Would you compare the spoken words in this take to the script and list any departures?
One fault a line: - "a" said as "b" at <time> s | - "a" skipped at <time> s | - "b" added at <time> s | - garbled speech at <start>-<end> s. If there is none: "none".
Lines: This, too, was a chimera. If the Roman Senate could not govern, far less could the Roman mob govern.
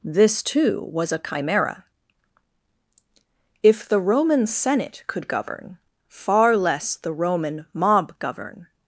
- "not" skipped at 5.3 s
- "could" skipped at 6.9 s